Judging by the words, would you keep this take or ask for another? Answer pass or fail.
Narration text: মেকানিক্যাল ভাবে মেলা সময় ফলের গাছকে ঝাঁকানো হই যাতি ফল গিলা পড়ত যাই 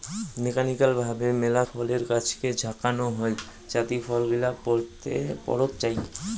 fail